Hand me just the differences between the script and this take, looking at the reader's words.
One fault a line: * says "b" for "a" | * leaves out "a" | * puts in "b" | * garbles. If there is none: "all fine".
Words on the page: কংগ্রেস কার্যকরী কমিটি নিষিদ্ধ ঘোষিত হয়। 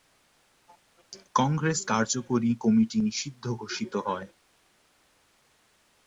all fine